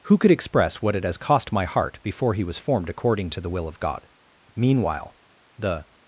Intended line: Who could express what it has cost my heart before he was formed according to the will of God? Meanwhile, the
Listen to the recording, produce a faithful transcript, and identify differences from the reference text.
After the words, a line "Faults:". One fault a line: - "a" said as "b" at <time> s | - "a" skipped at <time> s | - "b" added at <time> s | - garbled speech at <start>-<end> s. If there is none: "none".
Who could express what it has cost my heart before he was formed according to the will of God? Meanwhile, the
Faults:
none